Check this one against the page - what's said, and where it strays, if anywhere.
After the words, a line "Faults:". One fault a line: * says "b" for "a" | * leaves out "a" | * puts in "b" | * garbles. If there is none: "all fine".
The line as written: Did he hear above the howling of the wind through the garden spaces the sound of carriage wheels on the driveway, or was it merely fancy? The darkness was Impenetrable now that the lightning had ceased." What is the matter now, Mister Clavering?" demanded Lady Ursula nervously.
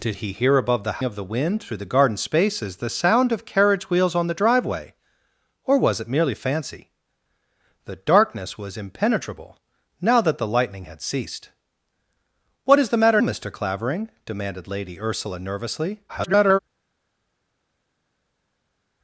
Did he hear above the of the wind through the garden spaces the sound of carriage wheels on the driveway, or was it merely fancy? The darkness was Impenetrable now that the lightning had ceased." What is the matter Mister Clavering?" demanded Lady Ursula nervously. [garbled]
Faults:
* leaves out "howling"
* leaves out "now"
* garbles